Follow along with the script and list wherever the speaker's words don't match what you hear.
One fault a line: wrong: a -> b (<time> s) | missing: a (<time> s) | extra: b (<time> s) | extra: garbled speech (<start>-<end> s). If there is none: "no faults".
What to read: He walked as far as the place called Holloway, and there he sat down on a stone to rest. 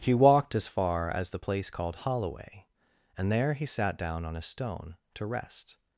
no faults